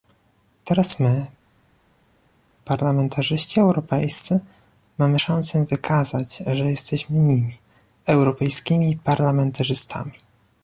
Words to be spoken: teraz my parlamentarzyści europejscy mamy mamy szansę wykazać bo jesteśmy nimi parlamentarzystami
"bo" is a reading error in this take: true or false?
true